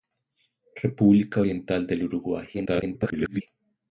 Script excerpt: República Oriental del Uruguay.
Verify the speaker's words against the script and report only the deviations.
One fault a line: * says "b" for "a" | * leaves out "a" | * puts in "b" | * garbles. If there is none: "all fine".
* garbles